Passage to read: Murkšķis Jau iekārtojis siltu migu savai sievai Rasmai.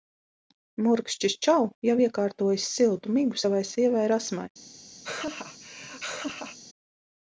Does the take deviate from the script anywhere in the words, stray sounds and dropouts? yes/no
yes